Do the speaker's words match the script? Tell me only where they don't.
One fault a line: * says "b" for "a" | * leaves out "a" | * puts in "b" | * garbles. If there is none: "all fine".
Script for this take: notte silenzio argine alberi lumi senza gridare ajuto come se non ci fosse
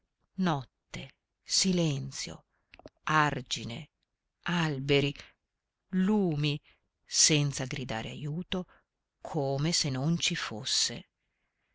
all fine